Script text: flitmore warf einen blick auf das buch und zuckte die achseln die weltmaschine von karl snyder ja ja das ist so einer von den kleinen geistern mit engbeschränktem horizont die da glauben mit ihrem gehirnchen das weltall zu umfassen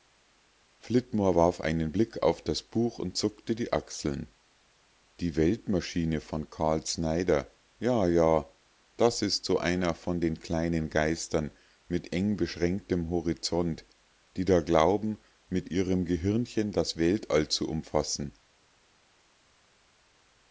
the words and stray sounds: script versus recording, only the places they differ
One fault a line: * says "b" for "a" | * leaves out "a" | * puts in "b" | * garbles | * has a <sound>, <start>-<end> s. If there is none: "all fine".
all fine